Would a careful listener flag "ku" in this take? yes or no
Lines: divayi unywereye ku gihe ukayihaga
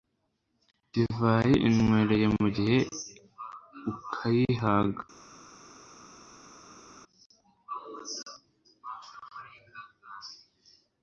yes